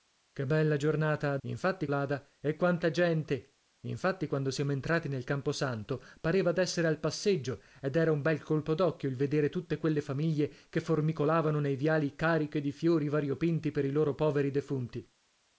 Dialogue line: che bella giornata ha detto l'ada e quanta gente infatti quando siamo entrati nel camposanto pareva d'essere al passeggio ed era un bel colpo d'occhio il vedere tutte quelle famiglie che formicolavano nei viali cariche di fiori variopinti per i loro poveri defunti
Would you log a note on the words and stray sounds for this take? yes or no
yes